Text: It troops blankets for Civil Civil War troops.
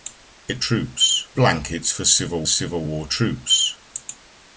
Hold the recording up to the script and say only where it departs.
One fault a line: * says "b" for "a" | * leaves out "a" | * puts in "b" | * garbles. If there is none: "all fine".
all fine